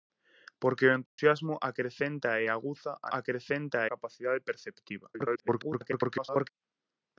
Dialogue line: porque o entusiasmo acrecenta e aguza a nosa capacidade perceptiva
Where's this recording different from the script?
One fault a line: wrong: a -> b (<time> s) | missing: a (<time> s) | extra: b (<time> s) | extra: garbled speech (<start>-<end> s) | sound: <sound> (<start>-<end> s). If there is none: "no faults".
sound: dropout (1.1-1.2 s)
wrong: nosa -> acrecenta (3.2 s)
extra: garbled speech (5.1-6.5 s)